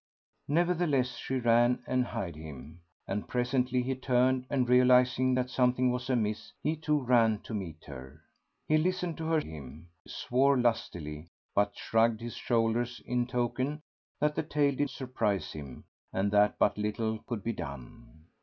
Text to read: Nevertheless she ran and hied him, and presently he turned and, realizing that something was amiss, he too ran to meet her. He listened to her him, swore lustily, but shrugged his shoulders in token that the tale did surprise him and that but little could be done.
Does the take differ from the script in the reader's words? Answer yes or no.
no